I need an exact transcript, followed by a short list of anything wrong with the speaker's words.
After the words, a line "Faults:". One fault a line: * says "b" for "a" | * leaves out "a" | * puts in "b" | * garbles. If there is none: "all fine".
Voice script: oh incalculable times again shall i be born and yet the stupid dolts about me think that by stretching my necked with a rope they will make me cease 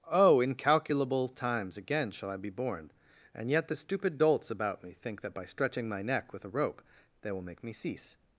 oh incalculable times again shall i be born and yet the stupid dolts about me think that by stretching my neck with a rope they will make me cease
Faults:
* says "neck" for "necked"